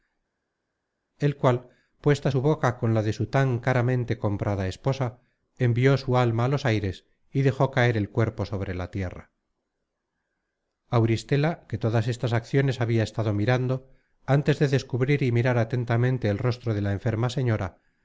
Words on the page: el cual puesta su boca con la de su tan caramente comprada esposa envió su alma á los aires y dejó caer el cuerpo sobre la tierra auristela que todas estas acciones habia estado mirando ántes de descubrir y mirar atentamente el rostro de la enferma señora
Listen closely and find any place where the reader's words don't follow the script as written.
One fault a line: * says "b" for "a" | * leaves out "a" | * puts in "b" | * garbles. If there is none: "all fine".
all fine